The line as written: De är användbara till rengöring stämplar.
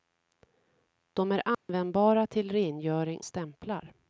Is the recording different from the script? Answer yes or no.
no